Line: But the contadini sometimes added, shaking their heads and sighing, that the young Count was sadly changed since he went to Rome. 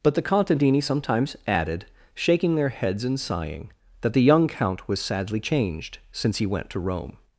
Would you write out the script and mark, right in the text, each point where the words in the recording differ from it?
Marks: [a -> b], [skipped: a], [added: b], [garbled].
But the contadini sometimes added, shaking their heads and sighing, that the young Count was sadly changed since he went to Rome.